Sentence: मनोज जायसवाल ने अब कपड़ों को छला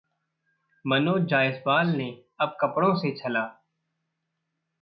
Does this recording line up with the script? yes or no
no